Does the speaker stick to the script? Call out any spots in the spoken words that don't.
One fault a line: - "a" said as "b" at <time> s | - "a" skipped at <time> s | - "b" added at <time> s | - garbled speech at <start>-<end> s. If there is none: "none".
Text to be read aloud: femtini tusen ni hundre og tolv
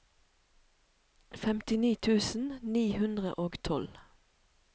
none